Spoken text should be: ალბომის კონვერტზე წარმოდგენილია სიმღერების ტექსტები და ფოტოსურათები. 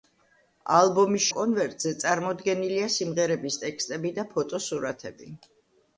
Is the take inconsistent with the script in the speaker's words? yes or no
no